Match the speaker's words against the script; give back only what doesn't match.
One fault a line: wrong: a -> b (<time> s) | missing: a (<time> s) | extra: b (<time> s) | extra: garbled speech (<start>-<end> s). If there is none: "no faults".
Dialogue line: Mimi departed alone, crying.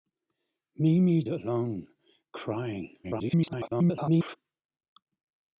missing: departed (1.2 s)
extra: garbled speech (3.0-4.4 s)